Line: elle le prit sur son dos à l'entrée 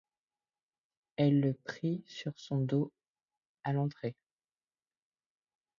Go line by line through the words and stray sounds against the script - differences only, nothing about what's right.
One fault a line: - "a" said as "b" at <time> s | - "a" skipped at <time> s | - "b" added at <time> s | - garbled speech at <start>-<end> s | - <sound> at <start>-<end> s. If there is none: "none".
none